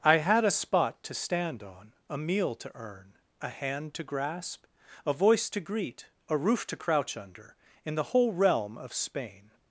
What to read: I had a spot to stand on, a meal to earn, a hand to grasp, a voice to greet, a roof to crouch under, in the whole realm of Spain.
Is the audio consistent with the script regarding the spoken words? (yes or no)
yes